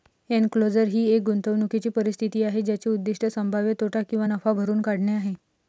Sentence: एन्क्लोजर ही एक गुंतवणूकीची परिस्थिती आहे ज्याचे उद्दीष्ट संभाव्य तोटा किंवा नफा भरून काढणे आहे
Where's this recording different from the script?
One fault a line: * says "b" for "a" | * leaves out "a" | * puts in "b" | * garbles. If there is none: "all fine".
all fine